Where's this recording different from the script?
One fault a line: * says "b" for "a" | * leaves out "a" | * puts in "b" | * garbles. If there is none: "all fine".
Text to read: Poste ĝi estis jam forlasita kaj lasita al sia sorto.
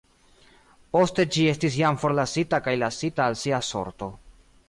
all fine